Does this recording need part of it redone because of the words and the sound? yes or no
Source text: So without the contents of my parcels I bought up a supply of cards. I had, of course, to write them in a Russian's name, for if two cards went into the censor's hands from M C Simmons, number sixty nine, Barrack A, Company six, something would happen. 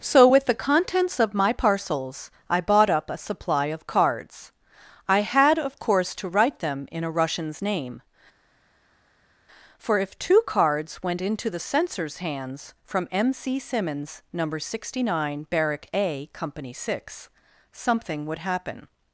yes